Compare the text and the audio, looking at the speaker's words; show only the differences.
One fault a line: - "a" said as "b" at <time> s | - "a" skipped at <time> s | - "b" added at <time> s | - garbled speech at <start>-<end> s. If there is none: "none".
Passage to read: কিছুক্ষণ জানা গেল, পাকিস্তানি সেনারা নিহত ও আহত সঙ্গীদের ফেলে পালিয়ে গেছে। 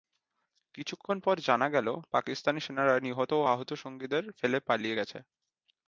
- "পর" added at 1.2 s